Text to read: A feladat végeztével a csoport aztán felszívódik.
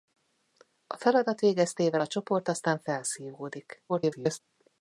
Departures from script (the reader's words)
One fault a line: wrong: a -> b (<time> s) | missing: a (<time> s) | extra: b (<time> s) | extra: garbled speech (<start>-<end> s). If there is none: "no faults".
extra: garbled speech (3.9-4.4 s)